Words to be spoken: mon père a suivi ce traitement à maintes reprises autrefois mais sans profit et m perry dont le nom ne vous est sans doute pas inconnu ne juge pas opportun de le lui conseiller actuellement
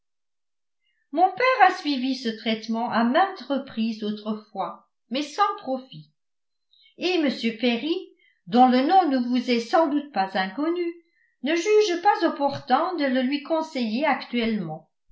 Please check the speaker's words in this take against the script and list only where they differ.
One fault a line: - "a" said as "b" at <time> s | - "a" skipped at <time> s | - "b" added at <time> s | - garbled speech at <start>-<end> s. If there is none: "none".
none